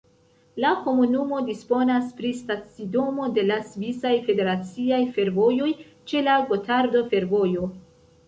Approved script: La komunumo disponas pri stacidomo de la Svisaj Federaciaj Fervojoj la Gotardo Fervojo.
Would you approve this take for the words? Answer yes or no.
no